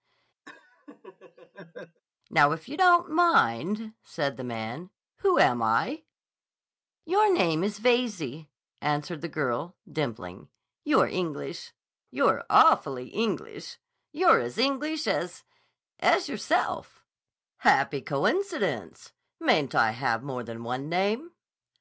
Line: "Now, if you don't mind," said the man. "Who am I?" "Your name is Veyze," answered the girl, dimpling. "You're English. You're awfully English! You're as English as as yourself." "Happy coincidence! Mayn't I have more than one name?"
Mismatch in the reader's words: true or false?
false